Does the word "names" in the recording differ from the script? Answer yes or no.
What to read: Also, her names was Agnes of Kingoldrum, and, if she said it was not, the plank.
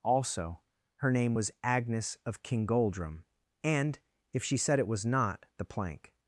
yes